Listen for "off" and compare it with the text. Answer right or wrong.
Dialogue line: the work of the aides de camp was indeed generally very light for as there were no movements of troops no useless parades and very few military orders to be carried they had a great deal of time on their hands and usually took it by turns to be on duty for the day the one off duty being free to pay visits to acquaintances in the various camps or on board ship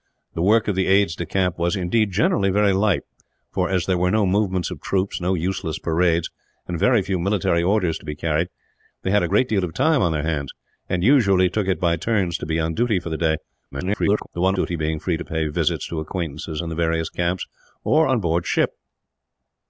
wrong